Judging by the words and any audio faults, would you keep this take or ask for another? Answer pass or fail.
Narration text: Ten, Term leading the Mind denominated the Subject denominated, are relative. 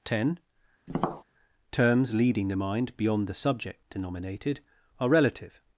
fail